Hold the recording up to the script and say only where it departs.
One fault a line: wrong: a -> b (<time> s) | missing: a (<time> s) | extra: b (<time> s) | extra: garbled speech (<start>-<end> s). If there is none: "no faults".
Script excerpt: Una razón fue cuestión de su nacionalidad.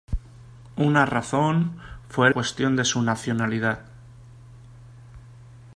no faults